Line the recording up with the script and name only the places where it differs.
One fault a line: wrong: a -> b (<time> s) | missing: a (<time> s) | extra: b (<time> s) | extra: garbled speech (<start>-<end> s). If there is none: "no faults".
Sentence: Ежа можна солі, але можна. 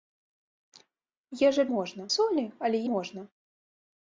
no faults